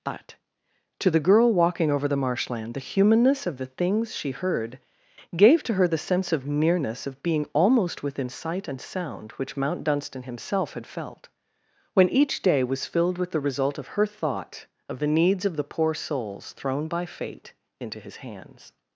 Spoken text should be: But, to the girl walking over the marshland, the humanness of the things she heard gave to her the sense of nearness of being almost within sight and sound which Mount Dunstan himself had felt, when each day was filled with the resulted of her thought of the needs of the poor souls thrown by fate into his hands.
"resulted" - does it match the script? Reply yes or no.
no